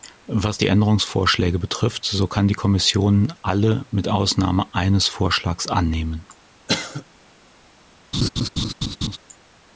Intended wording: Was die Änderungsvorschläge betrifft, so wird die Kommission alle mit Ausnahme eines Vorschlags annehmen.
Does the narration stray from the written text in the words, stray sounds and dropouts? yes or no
yes